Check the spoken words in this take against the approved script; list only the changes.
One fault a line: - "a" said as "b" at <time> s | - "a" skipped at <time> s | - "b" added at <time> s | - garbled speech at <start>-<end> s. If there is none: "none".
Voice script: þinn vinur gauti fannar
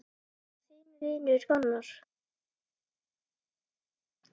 - "gauti" skipped at 1.5 s